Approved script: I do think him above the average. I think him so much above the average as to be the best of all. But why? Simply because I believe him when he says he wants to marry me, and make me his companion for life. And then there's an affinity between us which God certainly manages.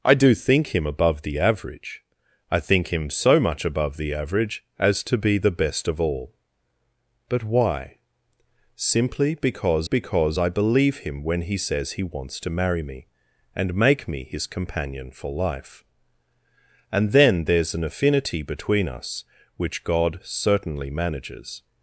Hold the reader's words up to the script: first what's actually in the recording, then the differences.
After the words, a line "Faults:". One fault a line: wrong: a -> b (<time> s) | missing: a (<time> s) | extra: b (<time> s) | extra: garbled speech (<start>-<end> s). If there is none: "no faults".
I do think him above the average. I think him so much above the average as to be the best of all. But why? Simply because because I believe him when he says he wants to marry me, and make me his companion for life. And then there's an affinity between us which God certainly manages.
Faults:
extra: because (9.8 s)